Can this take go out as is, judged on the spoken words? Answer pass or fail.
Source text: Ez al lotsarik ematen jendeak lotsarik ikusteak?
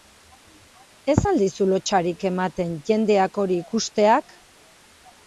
fail